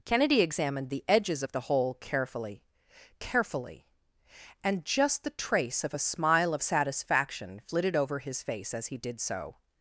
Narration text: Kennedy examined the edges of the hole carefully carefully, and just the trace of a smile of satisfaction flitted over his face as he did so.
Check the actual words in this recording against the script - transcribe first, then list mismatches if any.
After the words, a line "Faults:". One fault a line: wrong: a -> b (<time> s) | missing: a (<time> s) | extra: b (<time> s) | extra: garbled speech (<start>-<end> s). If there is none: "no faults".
Kennedy examined the edges of the hole carefully carefully, and just the trace of a smile of satisfaction flitted over his face as he did so.
Faults:
no faults